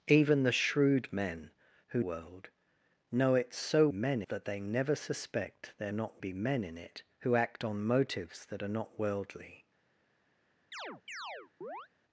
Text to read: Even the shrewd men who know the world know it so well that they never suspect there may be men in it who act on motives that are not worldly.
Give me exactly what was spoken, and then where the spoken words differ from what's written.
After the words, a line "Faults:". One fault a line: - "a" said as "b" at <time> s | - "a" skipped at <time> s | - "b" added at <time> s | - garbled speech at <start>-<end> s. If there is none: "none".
Even the shrewd men who world know it so men that they never suspect there not be men in it who act on motives that are not worldly.
Faults:
- "know the" skipped at 2.0 s
- "well" said as "men" at 3.9 s
- "may" said as "not" at 5.9 s